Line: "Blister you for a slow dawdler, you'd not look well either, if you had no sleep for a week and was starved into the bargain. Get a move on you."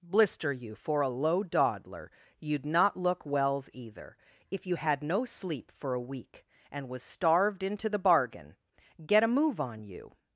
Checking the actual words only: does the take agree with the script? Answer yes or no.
no